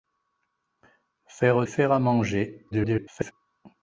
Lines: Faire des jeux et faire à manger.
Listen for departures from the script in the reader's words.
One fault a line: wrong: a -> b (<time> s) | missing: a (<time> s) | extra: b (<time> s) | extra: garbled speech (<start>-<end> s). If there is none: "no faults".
missing: des jeux et (1.7 s)
extra: garbled speech (2.7-3.3 s)